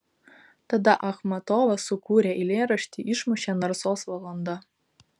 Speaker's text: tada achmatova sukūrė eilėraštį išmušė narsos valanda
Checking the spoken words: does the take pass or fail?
pass